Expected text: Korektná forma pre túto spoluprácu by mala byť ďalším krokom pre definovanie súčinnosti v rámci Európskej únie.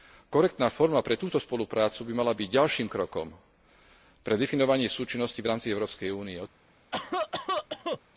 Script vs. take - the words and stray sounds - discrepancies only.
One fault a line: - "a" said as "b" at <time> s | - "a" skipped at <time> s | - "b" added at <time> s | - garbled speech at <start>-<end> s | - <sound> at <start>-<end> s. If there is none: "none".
- cough at 6.9-8.0 s